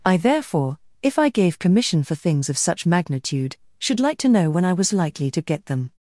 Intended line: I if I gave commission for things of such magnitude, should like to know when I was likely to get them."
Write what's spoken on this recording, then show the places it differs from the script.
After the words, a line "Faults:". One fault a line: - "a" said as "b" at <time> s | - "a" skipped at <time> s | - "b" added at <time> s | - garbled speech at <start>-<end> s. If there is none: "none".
I therefore, if I gave commission for things of such magnitude, should like to know when I was likely to get them."
Faults:
- "therefore" added at 0.2 s